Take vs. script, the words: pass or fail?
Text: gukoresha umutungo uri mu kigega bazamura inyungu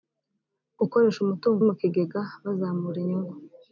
fail